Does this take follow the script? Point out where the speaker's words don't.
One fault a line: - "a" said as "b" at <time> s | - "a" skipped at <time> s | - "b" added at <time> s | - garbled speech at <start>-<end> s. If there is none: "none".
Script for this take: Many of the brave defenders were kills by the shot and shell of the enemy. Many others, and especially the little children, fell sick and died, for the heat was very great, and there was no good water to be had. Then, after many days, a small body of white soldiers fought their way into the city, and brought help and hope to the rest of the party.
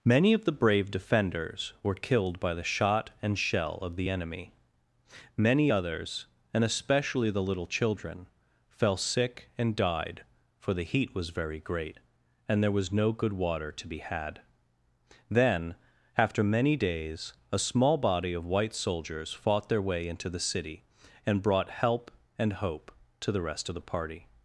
- "kills" said as "killed" at 1.9 s